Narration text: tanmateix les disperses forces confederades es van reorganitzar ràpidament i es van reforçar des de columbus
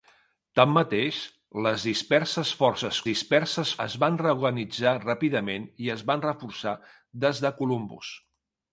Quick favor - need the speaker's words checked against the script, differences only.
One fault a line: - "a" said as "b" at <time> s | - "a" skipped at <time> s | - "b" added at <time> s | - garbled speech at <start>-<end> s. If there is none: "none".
- "confederades" said as "disperses" at 3.1 s